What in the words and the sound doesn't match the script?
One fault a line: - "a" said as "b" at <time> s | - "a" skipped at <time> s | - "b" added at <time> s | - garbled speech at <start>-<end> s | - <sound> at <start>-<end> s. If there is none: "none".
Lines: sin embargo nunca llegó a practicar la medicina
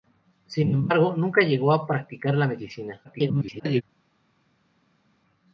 - garbled speech at 3.0-3.8 s